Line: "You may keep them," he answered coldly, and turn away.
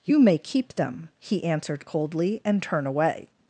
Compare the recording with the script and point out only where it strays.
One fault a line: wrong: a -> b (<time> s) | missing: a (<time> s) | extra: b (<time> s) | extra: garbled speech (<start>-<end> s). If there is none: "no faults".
no faults